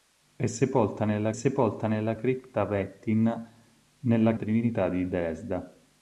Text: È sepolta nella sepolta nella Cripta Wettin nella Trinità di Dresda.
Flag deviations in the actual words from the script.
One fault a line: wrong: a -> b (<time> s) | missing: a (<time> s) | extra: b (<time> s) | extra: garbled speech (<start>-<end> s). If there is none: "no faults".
no faults